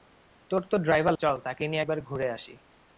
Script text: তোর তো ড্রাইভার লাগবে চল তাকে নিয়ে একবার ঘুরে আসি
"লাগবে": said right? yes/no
no